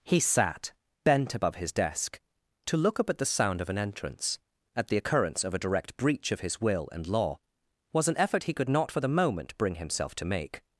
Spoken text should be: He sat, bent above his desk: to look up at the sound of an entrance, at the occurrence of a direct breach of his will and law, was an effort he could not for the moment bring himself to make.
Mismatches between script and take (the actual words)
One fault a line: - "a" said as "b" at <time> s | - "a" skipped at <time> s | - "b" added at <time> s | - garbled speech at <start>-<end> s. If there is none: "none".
none